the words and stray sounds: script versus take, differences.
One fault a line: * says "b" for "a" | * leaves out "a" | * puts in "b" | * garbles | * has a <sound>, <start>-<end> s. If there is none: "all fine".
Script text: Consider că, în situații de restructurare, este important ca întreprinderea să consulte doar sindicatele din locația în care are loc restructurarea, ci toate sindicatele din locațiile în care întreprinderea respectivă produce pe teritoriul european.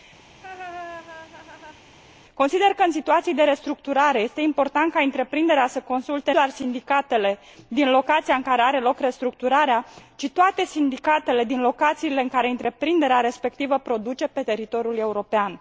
* has a laugh, 0.3-1.8 s